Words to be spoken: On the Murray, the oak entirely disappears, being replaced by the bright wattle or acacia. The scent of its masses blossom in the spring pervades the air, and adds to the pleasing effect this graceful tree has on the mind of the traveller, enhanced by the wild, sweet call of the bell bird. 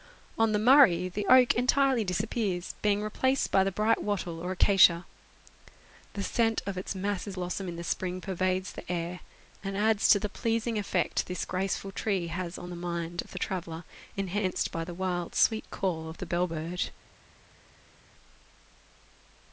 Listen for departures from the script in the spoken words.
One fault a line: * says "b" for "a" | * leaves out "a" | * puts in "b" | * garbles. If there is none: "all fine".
all fine